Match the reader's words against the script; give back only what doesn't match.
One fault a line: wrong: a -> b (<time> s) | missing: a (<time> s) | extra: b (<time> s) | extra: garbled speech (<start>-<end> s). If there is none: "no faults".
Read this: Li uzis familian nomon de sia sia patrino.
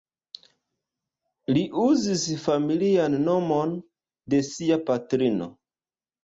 missing: sia (4.8 s)